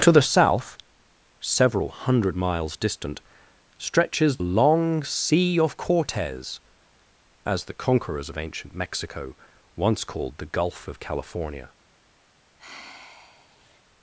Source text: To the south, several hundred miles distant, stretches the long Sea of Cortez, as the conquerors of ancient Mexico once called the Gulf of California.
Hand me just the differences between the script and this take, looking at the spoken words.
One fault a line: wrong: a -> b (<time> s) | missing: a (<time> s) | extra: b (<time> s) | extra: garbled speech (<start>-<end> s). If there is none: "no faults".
missing: the (4.4 s)